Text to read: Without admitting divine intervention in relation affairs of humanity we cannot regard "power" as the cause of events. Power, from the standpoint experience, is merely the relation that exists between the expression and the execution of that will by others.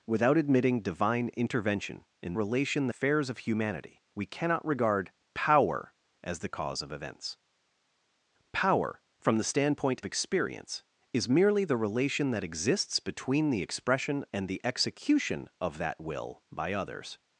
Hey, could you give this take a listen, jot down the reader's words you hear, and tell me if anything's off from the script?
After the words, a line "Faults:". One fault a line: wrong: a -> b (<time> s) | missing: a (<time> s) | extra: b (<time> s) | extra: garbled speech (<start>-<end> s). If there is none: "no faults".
Without admitting divine intervention in relation affairs of humanity we cannot regard "power" as the cause of events. Power, from the standpoint experience, is merely the relation that exists between the expression and the execution of that will by others.
Faults:
no faults